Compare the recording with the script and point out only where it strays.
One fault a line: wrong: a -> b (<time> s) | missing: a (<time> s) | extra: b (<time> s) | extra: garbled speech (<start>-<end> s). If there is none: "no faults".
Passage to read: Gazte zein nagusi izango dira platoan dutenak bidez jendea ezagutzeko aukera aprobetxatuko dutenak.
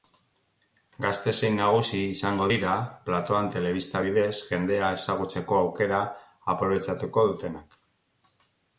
wrong: dutenak -> telebista (3.5 s)